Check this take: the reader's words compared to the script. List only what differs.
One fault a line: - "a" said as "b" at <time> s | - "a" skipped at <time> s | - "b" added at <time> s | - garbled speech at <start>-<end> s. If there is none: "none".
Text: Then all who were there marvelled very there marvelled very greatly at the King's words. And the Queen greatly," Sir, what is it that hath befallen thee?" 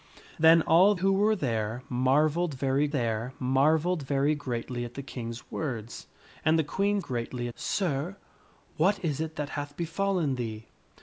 none